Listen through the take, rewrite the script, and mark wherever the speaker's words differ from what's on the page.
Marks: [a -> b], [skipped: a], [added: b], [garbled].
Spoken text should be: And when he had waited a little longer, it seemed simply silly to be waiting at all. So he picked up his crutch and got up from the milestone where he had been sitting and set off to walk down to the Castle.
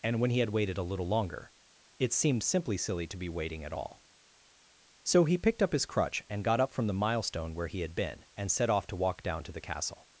And when he had waited a little longer, it seemed simply silly to be waiting at all. So he picked up his crutch and got up from the milestone where he had been [skipped: sitting] and set off to walk down to the Castle.